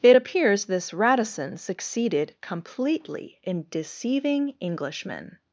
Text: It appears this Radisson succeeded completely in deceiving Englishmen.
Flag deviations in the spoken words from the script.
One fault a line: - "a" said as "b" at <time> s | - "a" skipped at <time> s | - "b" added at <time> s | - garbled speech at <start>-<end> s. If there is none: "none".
none